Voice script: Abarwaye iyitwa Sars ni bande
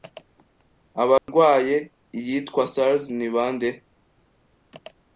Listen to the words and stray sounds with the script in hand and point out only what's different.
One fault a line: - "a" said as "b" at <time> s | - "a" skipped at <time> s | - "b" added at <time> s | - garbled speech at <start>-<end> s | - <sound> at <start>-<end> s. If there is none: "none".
- dropout at 1.2-1.3 s